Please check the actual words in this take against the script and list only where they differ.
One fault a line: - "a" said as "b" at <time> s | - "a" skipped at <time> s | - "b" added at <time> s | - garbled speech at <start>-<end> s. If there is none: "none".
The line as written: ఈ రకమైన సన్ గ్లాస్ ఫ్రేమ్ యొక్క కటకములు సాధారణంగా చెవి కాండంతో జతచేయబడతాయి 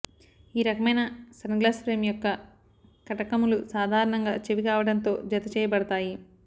none